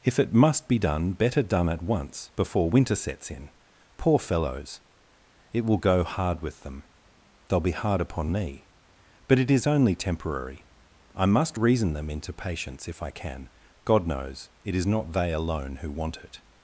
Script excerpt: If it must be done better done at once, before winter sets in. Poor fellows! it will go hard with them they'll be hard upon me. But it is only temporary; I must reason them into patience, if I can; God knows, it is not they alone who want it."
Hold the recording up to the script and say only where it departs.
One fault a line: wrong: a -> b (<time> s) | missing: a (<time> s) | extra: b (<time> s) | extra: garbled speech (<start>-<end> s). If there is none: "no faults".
no faults